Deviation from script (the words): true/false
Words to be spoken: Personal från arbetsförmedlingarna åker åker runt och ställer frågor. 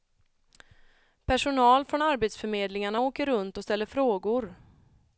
true